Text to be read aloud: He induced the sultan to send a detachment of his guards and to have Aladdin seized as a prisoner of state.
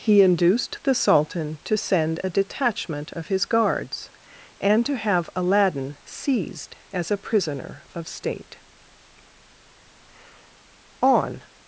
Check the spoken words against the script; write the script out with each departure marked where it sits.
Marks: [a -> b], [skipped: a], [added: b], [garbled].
He induced the sultan to send a detachment of his guards and to have Aladdin seized as a prisoner of state. [added: On]